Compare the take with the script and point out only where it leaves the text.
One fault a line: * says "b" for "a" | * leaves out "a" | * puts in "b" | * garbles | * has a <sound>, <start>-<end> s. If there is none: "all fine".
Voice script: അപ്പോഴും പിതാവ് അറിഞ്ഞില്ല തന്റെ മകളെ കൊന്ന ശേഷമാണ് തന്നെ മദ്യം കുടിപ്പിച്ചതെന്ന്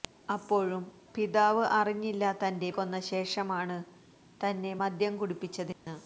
* leaves out "മകളെ"
* has a dropout, 5.7-5.9 s